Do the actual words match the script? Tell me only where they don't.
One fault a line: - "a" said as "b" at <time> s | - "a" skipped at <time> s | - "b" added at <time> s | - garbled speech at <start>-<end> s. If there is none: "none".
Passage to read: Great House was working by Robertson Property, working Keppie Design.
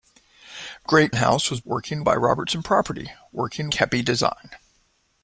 none